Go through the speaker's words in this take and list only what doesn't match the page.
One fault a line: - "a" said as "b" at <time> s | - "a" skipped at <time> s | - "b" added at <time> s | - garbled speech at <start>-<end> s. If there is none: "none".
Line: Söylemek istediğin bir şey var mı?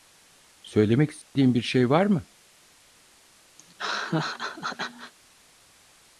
none